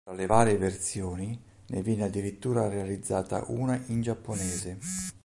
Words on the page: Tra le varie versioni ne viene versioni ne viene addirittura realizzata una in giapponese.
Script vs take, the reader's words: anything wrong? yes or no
yes